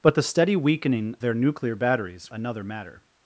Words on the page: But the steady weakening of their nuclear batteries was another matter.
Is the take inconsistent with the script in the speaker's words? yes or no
yes